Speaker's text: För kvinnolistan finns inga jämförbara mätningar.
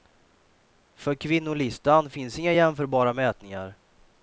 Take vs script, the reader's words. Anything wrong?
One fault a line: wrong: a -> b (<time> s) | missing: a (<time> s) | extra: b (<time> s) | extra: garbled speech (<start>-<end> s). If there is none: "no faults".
no faults